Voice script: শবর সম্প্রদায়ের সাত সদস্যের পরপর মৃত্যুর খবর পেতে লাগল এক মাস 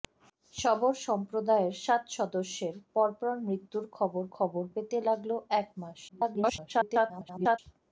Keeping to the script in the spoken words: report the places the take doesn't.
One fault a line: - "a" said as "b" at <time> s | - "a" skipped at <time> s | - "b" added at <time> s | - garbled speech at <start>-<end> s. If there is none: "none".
- "খবর" added at 4.4 s
- garbled speech at 6.1-7.6 s